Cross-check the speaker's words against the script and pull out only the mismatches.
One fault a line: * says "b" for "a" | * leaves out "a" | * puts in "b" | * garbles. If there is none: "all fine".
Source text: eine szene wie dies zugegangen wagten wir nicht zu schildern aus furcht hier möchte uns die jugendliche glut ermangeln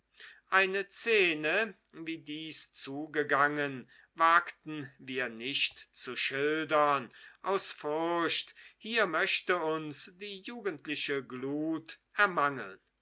all fine